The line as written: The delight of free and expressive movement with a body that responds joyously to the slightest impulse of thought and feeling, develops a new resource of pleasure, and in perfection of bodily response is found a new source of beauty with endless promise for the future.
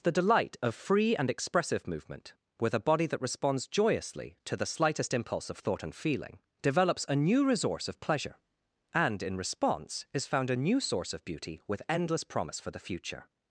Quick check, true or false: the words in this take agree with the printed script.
false